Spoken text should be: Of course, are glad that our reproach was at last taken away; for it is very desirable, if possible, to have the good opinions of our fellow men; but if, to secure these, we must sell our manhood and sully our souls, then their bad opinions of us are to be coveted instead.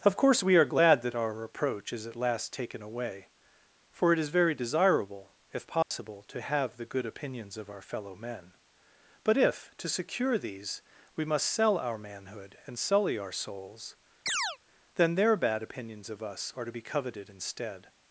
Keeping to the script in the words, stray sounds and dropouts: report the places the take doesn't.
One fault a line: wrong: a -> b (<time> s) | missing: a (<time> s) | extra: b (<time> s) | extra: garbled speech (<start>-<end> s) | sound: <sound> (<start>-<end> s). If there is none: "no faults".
extra: we (0.4 s)
wrong: was -> is (1.9 s)
sound: dropout (5.8-5.9 s)
sound: chirp (14.3-14.6 s)